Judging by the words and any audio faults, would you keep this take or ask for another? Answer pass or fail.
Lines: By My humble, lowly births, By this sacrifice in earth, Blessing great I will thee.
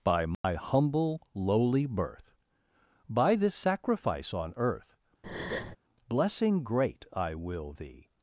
fail